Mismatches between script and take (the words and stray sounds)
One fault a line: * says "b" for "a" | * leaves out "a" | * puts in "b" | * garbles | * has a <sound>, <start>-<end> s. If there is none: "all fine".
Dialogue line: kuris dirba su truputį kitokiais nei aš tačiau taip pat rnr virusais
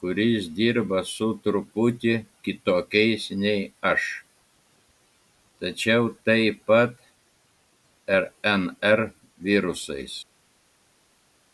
all fine